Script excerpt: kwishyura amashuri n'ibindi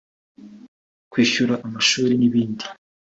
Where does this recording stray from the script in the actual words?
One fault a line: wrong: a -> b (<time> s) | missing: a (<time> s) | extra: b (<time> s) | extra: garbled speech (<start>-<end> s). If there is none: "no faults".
no faults